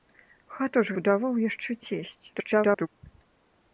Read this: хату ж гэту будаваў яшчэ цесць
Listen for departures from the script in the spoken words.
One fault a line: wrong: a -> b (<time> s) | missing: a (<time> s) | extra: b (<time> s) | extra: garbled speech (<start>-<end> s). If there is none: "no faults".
missing: гэту (0.9 s)
extra: garbled speech (2.3-2.9 s)